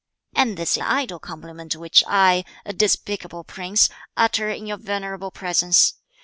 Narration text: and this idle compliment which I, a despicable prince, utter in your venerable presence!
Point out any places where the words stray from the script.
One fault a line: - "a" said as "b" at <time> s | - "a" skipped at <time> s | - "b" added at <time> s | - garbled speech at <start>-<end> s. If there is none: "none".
none